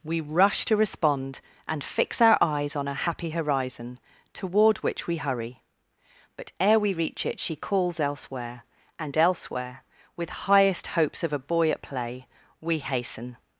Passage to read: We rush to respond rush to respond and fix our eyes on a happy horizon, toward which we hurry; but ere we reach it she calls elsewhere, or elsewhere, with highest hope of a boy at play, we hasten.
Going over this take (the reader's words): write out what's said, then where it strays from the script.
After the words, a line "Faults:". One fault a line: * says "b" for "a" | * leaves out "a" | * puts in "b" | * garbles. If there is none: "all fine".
We rush to respond and fix our eyes on a happy horizon, toward which we hurry; but ere we reach it she calls elsewhere, and elsewhere, with highest hopes of a boy at play, we hasten.
Faults:
* leaves out "rush to respond"
* says "and" for "or"
* says "hopes" for "hope"